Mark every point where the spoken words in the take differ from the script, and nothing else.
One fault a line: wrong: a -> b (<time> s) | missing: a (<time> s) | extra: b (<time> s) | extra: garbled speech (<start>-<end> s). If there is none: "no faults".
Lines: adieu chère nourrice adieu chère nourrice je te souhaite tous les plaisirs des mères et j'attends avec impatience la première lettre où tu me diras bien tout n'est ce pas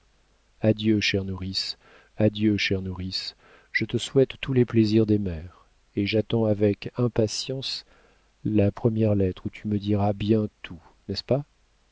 no faults